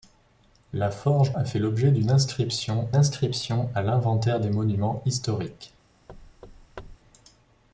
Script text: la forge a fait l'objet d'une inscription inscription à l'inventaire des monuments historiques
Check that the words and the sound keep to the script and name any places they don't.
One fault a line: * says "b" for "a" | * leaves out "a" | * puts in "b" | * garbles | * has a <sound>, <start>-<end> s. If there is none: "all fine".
* has a thud, 6.1-7.0 s